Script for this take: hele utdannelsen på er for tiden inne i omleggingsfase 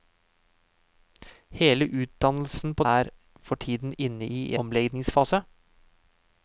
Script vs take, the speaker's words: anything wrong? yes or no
no